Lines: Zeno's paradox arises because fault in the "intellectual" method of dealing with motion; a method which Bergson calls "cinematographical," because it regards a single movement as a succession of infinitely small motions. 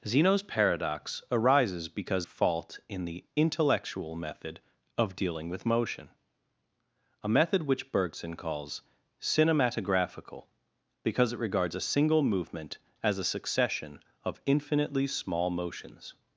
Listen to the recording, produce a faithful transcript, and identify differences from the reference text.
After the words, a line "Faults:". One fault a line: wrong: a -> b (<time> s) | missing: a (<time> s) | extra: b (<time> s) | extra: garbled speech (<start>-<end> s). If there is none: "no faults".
Zeno's paradox arises because fault in the "intellectual" method of dealing with motion; a method which Bergson calls "cinematographical," because it regards a single movement as a succession of infinitely small motions.
Faults:
no faults